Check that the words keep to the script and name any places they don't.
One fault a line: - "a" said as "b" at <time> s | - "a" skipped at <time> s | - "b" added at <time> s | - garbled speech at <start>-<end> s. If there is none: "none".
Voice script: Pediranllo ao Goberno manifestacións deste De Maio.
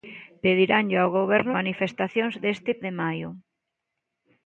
none